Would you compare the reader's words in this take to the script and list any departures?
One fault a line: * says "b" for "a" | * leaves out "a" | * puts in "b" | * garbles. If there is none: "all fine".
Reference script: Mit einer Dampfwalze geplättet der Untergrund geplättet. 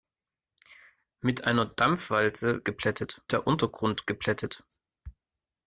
all fine